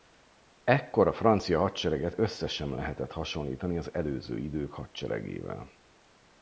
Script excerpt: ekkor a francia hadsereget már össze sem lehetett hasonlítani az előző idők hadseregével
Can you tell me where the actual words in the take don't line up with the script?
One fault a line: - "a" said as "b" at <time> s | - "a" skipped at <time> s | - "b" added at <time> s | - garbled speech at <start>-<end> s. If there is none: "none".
- "már" skipped at 2.1 s